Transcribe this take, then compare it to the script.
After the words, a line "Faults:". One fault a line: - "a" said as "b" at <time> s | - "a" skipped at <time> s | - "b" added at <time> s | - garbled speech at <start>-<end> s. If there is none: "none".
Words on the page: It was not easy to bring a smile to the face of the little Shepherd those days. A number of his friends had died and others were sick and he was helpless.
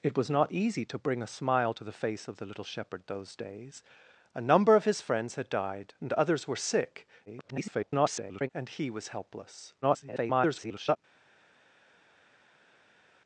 It was not easy to bring a smile to the face of the little Shepherd those days. A number of his friends had died and others were sick [garbled] and he was helpless. [garbled]
Faults:
- garbled speech at 7.3-8.5 s
- garbled speech at 9.8-11.0 s